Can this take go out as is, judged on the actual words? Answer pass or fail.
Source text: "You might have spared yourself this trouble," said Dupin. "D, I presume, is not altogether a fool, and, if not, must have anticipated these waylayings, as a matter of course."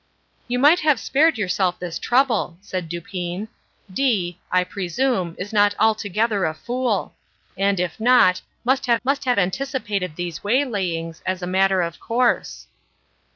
fail